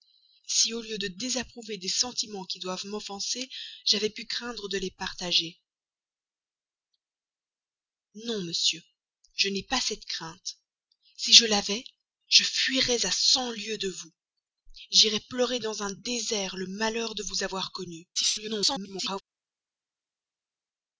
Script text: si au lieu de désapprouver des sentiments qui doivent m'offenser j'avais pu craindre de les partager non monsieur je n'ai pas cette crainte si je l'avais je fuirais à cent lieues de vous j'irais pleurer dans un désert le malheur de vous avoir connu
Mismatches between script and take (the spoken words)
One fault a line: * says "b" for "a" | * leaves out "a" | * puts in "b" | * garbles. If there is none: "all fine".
* garbles